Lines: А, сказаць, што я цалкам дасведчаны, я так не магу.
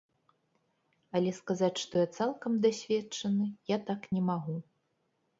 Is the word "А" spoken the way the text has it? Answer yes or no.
no